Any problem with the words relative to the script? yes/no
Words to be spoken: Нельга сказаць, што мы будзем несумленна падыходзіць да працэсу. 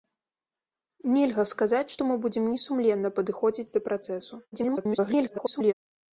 yes